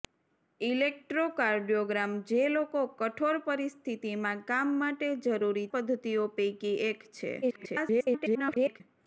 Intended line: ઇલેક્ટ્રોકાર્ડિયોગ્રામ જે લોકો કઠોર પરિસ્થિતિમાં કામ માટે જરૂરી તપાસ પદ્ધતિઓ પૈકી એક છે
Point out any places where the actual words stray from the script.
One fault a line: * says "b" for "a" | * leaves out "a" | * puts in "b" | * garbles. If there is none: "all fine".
* leaves out "તપાસ"
* garbles